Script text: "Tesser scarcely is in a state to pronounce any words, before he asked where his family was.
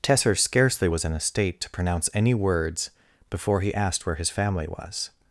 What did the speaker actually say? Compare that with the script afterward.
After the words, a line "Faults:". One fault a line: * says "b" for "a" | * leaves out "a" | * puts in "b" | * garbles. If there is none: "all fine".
"Tesser scarcely was in a state to pronounce any words, before he asked where his family was.
Faults:
* says "was" for "is"